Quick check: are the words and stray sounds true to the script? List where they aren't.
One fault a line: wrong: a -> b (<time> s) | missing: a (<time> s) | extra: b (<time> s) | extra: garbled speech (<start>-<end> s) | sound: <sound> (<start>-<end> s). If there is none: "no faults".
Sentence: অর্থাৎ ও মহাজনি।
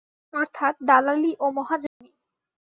extra: দালালি (0.8 s)
sound: dropout (1.9-2.0 s)